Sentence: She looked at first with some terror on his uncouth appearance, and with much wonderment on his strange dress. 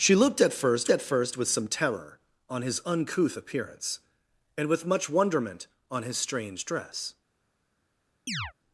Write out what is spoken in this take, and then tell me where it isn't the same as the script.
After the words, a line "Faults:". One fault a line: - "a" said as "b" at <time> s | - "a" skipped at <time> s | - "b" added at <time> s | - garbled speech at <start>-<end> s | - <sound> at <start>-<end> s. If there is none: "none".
She looked at first at first with some terror on his uncouth appearance, and with much wonderment on his strange dress.
Faults:
- "at first" added at 0.9 s
- chirp at 8.3-8.5 s